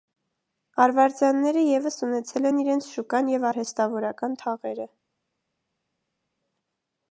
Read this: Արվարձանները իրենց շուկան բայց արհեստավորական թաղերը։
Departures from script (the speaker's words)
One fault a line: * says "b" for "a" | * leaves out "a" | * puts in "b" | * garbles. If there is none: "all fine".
* puts in "ևս ունեցել են"
* says "և" for "բայց"